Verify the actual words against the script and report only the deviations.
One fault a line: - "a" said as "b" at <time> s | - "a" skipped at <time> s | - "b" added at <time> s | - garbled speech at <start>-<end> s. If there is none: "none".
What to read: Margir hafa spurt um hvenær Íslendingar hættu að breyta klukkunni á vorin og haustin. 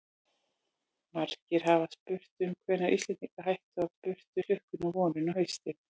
- "breyta" said as "spurt" at 3.9 s